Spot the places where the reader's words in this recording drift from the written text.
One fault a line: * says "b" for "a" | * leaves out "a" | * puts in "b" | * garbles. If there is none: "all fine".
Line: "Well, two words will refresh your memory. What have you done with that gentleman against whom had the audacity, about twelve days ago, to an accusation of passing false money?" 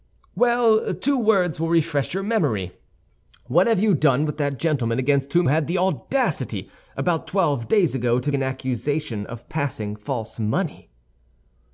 all fine